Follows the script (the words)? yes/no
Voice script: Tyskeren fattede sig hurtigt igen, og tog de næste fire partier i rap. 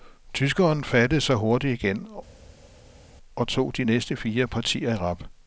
yes